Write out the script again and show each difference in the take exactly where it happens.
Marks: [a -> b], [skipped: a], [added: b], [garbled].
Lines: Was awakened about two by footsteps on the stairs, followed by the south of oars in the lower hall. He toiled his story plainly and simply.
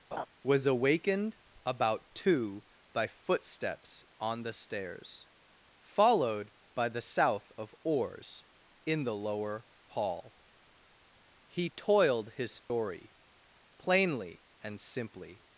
Was awakened about two by footsteps on the stairs, followed by the south of oars in the lower hall. He toiled his story plainly and simply.